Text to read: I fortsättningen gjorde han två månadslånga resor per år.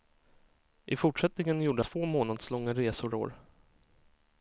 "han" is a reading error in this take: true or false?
true